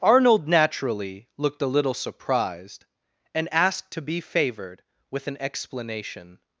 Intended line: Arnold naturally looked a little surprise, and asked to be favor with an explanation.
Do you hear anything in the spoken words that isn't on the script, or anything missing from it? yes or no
yes